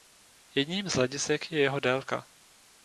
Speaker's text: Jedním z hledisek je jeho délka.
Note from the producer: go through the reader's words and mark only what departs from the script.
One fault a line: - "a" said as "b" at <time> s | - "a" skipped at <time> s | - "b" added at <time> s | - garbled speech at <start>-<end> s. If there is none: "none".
none